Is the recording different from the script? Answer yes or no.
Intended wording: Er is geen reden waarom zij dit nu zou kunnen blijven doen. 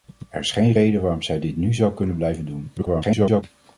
yes